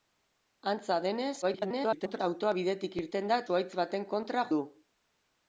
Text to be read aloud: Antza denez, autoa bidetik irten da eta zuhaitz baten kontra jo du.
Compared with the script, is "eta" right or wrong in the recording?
wrong